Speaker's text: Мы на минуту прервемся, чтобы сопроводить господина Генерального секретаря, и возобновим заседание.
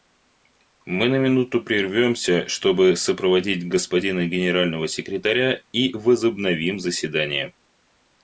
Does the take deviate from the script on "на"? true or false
false